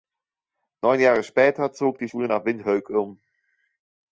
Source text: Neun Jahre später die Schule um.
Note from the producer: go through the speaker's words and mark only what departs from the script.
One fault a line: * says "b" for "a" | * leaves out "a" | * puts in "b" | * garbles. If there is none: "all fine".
* puts in "zog"
* puts in "nach Windhoek"